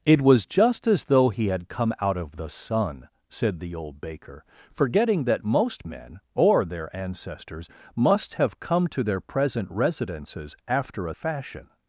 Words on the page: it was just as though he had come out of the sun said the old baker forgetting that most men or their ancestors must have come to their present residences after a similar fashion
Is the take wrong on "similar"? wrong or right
wrong